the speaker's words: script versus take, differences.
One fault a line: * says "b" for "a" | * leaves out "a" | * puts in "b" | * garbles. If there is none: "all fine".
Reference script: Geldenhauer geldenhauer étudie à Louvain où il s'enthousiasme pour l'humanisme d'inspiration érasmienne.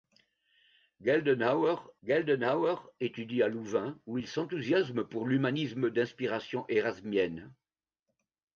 all fine